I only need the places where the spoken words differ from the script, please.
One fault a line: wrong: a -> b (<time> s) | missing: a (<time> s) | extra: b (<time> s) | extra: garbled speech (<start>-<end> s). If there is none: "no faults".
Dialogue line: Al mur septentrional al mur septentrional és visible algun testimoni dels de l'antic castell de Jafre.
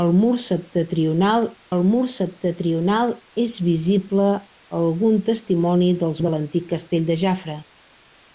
no faults